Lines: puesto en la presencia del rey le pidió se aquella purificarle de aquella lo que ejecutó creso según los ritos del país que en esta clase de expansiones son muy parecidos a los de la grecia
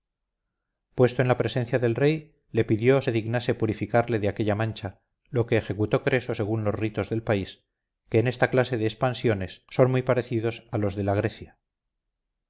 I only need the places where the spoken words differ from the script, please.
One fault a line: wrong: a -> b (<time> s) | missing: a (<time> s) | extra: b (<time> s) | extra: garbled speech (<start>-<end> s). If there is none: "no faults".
wrong: aquella -> dignase (3.1 s)
extra: mancha (4.5 s)